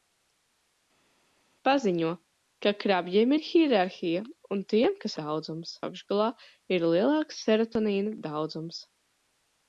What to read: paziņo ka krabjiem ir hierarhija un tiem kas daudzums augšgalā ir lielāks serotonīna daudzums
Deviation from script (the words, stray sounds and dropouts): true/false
false